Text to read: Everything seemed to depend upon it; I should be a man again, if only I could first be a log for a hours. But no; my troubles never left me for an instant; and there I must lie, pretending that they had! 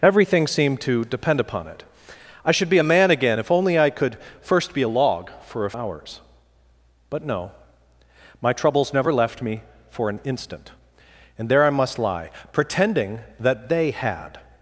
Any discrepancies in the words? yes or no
no